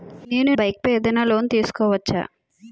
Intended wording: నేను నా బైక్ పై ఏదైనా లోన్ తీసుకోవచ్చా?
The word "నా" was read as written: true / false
false